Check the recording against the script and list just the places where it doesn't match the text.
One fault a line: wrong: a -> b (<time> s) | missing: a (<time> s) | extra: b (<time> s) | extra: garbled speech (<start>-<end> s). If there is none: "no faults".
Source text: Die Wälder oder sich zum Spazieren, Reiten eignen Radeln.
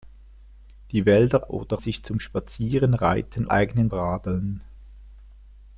no faults